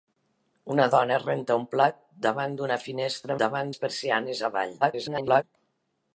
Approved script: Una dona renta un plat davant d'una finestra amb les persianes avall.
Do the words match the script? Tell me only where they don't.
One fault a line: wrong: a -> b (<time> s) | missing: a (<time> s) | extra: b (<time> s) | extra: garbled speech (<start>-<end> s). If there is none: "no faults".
wrong: amb -> davant (3.4 s)
extra: garbled speech (4.8-5.4 s)